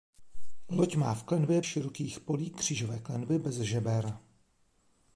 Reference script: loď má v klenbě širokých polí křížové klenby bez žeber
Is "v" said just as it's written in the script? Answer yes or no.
yes